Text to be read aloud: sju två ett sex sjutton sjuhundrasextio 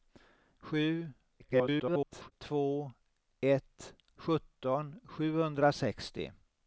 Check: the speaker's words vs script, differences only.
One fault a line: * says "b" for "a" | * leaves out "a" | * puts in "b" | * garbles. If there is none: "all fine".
* garbles
* leaves out "sex"